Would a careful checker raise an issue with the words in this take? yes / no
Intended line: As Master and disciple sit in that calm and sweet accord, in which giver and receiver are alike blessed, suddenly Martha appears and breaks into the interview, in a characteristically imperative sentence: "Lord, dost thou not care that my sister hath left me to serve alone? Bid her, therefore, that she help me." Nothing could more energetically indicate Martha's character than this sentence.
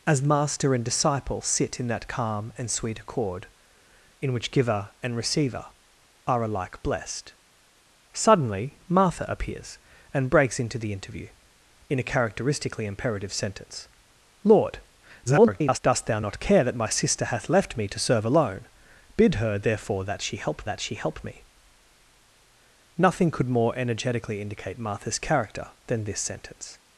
yes